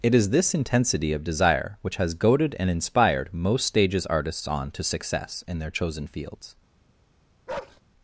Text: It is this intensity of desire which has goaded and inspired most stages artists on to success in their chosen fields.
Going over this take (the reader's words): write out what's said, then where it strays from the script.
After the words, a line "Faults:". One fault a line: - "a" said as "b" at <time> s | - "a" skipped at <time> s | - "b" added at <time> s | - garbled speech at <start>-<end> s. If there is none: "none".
It is this intensity of desire which has goaded and inspired most stages artists on to success in their chosen fields.
Faults:
none